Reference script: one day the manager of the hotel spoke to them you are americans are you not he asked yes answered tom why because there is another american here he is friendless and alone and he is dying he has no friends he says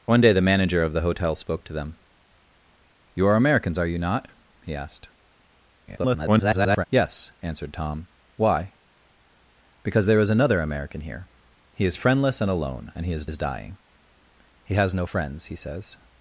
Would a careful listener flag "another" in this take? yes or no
no